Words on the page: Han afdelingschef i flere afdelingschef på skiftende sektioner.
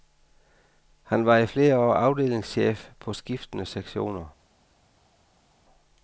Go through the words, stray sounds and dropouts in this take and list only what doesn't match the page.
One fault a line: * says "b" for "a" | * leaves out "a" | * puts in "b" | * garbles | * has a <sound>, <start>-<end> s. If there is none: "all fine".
* says "var" for "afdelingschef"
* puts in "år"